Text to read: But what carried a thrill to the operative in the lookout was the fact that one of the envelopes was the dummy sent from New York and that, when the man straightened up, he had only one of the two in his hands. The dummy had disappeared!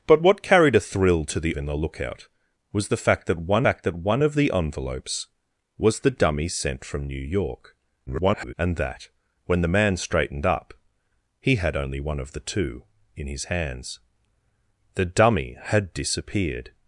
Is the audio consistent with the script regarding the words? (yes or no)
no